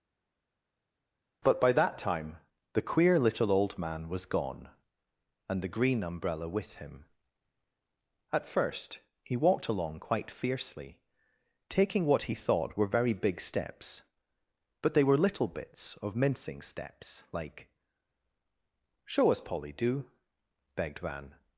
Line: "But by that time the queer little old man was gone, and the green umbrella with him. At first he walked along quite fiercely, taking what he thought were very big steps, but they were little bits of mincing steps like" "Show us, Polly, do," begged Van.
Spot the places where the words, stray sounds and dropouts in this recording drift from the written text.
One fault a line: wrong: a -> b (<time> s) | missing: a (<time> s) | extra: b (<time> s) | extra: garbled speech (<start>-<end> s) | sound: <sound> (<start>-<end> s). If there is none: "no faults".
no faults